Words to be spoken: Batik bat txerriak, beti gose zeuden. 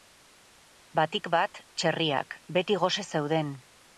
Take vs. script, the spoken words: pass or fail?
pass